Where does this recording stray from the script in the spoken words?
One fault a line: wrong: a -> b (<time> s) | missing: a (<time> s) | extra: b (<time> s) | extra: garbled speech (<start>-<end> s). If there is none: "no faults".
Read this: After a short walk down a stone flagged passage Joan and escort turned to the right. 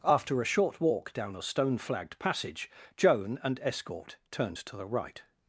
no faults